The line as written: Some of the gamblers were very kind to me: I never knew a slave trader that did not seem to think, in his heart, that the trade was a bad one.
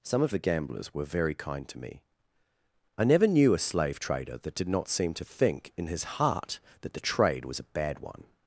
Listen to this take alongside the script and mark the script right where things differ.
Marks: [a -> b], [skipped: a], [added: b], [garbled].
Some of the gamblers were very kind to me: I never knew a slave trader that did not seem to think, in his heart, that the trade was a bad one.